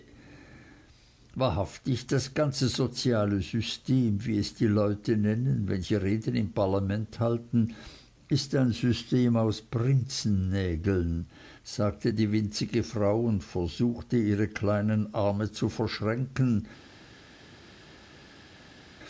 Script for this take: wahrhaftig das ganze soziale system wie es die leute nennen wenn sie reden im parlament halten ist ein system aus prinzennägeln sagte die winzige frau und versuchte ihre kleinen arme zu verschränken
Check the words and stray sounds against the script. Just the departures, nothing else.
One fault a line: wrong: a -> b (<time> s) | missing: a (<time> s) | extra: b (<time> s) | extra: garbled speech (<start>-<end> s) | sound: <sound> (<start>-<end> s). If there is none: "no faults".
no faults